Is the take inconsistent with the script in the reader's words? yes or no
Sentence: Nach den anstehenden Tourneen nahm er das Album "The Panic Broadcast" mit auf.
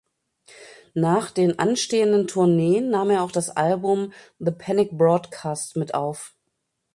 yes